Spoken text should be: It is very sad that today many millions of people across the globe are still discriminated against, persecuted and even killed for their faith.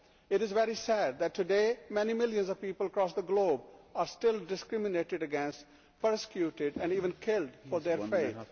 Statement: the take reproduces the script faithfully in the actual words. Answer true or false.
true